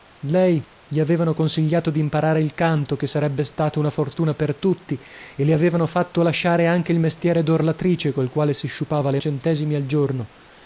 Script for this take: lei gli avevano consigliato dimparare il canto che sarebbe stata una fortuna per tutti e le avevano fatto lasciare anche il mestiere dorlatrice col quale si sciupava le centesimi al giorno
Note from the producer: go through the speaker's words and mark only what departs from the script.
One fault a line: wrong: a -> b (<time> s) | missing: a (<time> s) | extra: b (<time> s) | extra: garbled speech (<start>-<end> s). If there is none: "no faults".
no faults